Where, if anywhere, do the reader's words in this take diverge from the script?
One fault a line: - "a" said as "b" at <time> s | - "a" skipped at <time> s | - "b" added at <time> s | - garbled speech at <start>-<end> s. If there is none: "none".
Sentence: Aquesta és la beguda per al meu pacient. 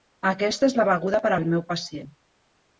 none